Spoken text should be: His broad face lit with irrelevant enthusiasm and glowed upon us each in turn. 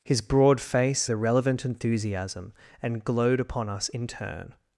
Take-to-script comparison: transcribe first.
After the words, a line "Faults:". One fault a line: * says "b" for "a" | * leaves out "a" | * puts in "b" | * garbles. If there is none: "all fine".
His broad face irrelevant enthusiasm and glowed upon us in turn.
Faults:
* leaves out "lit with"
* leaves out "each"